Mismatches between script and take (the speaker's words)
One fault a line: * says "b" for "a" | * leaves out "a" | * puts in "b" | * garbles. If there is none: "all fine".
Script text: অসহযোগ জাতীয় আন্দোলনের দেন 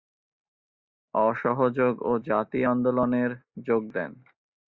* puts in "ও"
* puts in "যোগ"